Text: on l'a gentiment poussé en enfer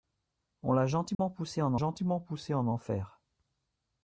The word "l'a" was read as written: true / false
true